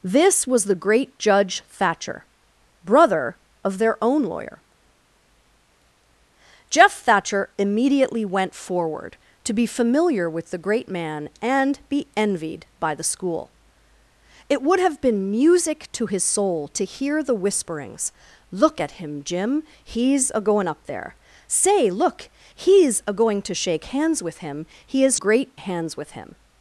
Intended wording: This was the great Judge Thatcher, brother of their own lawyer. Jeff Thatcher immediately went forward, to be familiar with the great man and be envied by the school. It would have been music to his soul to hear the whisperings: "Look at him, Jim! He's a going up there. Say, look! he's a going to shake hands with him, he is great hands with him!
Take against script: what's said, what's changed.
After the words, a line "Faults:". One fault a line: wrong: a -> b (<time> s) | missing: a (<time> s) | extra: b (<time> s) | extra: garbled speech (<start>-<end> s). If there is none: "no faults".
This was the great Judge Thatcher, brother of their own lawyer. Jeff Thatcher immediately went forward, to be familiar with the great man and be envied by the school. It would have been music to his soul to hear the whisperings: "Look at him, Jim! He's a going up there. Say, look! he's a going to shake hands with him, he is great hands with him!
Faults:
no faults